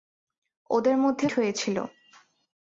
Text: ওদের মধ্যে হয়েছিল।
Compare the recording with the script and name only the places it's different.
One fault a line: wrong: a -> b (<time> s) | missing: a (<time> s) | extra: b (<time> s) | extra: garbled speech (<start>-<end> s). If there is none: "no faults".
no faults